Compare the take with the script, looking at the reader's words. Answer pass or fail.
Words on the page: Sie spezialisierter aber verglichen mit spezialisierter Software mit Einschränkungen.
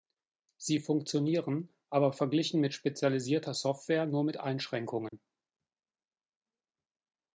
fail